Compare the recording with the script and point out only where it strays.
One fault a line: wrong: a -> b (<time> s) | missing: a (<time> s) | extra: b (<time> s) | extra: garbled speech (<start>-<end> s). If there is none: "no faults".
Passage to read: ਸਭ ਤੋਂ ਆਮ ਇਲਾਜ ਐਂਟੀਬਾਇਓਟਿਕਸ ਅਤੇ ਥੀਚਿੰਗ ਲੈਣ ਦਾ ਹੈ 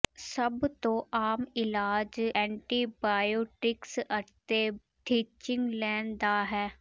no faults